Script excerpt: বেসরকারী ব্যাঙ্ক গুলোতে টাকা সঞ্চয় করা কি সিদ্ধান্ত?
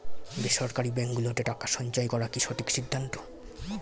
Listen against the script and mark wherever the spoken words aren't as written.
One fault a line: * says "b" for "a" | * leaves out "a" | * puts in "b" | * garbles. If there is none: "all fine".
* puts in "সঠিক"